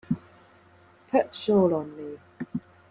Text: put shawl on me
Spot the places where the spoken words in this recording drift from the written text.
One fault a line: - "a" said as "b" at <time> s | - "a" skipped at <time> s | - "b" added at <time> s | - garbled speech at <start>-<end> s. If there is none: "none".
none